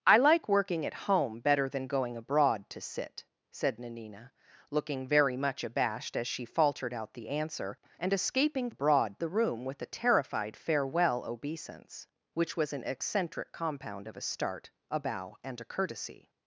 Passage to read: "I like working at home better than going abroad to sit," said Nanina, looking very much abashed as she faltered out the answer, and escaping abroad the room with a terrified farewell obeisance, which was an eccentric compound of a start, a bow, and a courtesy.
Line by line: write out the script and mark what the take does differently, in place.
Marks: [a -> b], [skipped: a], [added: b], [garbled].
"I like working at home better than going abroad to sit," said Nanina, looking very much abashed as she faltered out the answer, and escaping abroad the room with a terrified farewell obeisance, which was an eccentric compound of a start, a bow, and a courtesy.